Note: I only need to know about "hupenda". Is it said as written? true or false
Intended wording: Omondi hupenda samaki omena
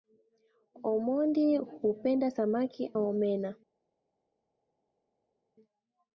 true